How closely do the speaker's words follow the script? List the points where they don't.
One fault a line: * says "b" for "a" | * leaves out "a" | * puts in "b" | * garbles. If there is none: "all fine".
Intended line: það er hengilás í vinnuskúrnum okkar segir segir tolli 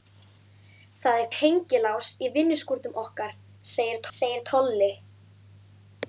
all fine